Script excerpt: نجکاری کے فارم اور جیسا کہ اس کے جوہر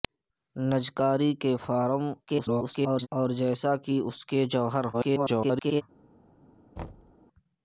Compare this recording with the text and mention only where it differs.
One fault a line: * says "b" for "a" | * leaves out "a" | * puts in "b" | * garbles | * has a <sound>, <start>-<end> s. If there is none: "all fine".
* garbles
* garbles
* has a thud, 6.8-7.1 s